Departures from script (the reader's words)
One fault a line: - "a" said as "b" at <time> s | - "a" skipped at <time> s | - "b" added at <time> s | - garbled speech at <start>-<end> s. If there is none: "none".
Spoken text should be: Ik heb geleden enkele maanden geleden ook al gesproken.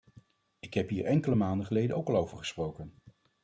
- "geleden" said as "hier" at 0.9 s
- "over" added at 2.2 s